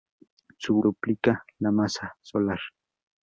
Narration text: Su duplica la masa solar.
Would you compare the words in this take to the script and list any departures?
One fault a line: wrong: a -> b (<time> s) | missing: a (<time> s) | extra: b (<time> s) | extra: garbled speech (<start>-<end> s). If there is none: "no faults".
no faults